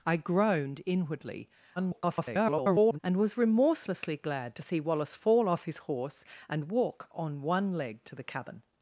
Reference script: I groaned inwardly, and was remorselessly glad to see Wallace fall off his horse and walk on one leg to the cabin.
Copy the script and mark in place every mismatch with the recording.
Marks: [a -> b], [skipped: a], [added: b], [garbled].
I groaned inwardly, [garbled] and was remorselessly glad to see Wallace fall off his horse and walk on one leg to the cabin.